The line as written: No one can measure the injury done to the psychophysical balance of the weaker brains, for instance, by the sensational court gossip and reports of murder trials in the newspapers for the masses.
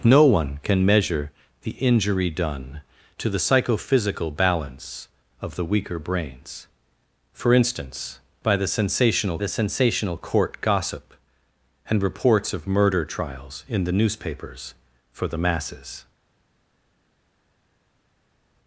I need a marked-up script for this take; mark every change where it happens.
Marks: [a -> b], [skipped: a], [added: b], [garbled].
No one can measure the injury done to the psychophysical balance of the weaker brains, for instance, by the sensational [added: the sensational] court gossip and reports of murder trials in the newspapers for the masses.